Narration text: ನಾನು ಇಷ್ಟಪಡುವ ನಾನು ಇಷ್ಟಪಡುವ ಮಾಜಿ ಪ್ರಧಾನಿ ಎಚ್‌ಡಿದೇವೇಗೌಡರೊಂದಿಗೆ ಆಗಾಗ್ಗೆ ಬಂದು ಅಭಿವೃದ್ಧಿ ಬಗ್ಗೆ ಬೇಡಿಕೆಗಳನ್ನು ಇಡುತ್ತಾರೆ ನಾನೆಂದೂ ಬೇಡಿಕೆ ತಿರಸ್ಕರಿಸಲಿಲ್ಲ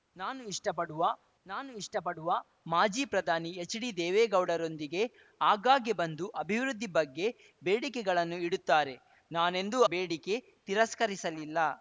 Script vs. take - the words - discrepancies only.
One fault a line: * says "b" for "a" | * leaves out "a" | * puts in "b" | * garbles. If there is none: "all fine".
all fine